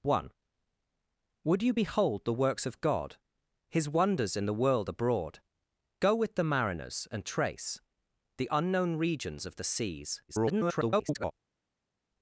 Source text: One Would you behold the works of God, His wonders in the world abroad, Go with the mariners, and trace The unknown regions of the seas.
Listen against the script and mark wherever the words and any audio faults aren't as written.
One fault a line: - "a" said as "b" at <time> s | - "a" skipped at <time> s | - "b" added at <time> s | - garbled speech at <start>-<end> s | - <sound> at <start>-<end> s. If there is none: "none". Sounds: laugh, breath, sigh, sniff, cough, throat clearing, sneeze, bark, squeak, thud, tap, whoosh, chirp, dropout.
- garbled speech at 10.3-11.3 s